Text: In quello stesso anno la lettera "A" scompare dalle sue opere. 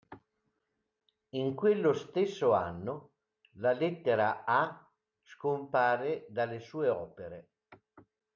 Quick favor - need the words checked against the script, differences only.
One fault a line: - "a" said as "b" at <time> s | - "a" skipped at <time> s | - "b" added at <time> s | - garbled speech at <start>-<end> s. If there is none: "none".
none